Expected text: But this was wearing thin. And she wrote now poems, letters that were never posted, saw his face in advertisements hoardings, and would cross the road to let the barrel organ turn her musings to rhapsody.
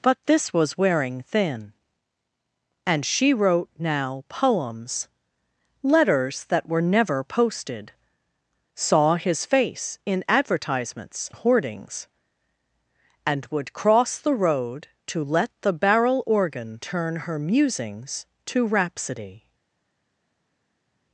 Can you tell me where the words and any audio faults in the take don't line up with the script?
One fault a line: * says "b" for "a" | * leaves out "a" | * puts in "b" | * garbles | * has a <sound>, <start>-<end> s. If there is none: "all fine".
all fine